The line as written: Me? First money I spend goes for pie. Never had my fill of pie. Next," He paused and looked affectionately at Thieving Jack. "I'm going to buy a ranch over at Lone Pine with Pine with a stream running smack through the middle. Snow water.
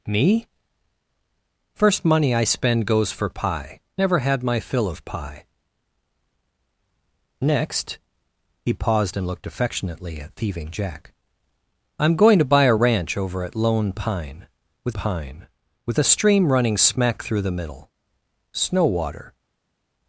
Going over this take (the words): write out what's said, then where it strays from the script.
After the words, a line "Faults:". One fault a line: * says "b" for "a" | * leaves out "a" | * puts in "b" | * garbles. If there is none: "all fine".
Me? First money I spend goes for pie. Never had my fill of pie. Next," He paused and looked affectionately at Thieving Jack. "I'm going to buy a ranch over at Lone Pine with Pine with a stream running smack through the middle. Snow water.
Faults:
all fine